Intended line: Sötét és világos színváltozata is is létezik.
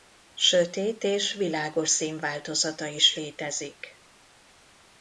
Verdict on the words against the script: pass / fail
fail